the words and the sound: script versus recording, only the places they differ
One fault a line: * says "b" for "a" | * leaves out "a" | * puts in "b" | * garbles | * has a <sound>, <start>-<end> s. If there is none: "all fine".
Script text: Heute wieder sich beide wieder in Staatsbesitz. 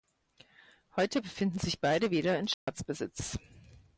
* says "befinden" for "wieder"
* has a dropout, 2.5-2.7 s